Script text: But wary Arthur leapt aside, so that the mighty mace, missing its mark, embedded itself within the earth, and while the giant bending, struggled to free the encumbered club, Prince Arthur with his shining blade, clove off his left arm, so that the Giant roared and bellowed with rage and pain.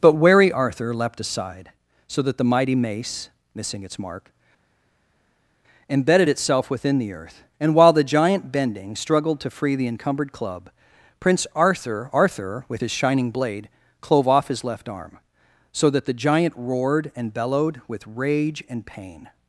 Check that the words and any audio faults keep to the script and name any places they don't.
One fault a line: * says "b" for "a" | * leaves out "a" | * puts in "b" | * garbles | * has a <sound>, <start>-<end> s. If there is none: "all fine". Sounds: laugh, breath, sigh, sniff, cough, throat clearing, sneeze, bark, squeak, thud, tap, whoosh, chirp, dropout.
* puts in "arthur"